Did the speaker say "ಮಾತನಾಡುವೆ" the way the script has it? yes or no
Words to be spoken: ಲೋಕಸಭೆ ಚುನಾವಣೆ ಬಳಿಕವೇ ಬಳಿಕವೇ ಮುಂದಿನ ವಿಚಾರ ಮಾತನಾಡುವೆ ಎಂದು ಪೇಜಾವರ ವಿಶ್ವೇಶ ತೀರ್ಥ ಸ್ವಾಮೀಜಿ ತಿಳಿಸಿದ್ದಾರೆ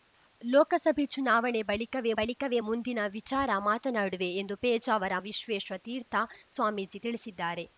yes